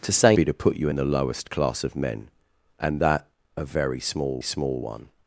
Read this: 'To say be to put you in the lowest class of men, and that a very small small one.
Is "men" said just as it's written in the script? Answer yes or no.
yes